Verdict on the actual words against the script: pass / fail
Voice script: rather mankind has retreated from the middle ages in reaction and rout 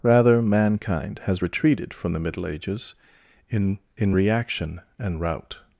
fail